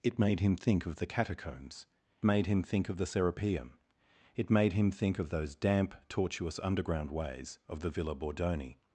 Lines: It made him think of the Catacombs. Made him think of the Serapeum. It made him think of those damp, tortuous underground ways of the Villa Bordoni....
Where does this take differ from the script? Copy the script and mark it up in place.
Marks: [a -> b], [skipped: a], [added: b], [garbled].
It made him think of the Catacombs. Made him think of the Serapeum. It made him think of those damp, tortuous underground ways of the Villa Bordoni....